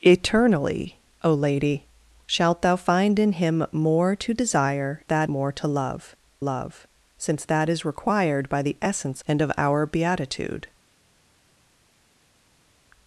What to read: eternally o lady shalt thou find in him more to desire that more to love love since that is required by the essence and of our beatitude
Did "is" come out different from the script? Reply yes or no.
no